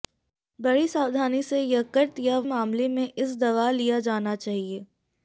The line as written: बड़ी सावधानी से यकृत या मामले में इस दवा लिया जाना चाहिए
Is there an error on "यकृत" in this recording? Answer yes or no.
no